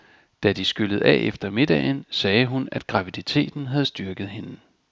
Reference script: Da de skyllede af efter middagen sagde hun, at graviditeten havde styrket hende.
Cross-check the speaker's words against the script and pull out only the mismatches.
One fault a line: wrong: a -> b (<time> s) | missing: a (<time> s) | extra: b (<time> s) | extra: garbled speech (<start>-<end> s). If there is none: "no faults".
no faults